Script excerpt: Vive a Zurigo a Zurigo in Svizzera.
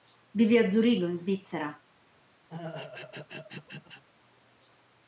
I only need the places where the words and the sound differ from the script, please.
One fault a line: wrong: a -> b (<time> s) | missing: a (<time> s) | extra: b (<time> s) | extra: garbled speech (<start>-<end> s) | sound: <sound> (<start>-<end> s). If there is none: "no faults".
missing: a Zurigo (1.1 s)
sound: throat clearing (2.5-4.0 s)